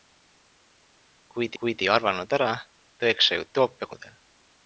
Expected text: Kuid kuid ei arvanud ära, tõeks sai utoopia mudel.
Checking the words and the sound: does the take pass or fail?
pass